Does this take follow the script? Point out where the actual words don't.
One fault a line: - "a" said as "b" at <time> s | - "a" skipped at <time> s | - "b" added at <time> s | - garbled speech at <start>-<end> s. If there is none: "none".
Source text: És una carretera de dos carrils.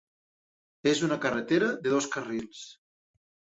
none